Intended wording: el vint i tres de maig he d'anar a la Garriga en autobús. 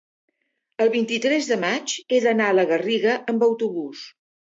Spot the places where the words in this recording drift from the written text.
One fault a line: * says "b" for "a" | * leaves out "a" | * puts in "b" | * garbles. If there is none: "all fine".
* says "amb" for "en"